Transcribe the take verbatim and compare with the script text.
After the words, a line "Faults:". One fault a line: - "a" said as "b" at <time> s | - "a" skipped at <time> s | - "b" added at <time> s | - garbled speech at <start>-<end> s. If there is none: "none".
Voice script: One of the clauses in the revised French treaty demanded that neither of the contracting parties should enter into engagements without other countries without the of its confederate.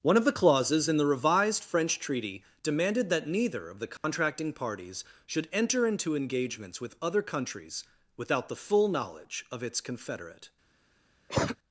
One of the clauses in the revised French treaty demanded that neither of the contracting parties should enter into engagements with other countries without the full knowledge of its confederate.
Faults:
- "without" said as "with" at 6.8 s
- "full knowledge" added at 8.6 s